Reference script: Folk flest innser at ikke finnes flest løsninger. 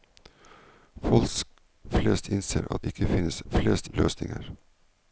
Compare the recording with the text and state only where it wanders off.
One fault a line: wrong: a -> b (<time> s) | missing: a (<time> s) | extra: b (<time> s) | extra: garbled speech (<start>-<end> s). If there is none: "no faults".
no faults